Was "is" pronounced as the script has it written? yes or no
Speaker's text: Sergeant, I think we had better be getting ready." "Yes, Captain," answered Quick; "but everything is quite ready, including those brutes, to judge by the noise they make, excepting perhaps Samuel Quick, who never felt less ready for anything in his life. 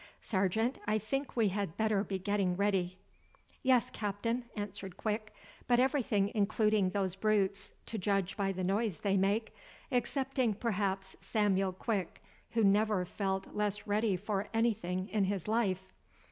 no